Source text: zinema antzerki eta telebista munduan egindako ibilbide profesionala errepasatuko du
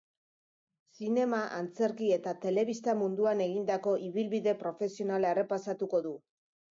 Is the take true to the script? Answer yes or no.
yes